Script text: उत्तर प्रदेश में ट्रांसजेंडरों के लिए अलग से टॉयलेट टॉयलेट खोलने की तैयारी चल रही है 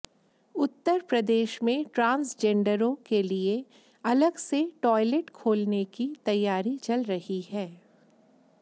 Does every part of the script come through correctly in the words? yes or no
no